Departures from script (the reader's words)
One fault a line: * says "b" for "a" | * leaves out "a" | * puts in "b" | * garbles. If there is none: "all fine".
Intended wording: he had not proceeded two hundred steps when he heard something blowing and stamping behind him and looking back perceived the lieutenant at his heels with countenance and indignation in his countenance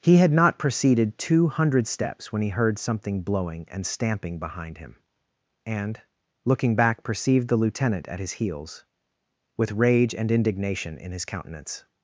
* says "rage" for "countenance"